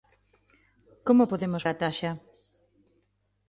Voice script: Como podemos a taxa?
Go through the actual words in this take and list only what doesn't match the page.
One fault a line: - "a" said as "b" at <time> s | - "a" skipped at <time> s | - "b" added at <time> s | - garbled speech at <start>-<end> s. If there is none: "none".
none